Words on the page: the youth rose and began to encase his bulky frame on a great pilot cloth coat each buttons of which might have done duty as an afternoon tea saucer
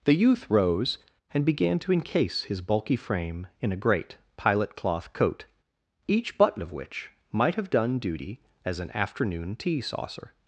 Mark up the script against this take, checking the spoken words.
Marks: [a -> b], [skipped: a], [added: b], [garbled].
the youth rose and began to encase his bulky frame [on -> in] a great pilot cloth coat each [buttons -> button] of which might have done duty as an afternoon tea saucer